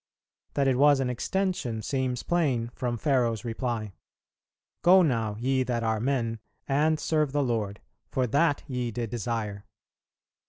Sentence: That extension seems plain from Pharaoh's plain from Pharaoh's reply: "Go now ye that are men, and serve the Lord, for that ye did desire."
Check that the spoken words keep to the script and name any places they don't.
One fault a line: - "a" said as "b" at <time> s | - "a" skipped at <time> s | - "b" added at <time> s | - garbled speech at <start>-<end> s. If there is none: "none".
- "extension seems plain from Pharaoh's" said as "it was an extension seems" at 0.7 s